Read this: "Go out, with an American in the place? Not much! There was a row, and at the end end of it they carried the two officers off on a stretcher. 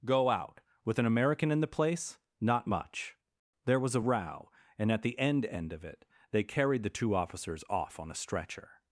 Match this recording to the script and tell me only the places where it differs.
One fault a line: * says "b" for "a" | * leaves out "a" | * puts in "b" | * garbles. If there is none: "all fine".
all fine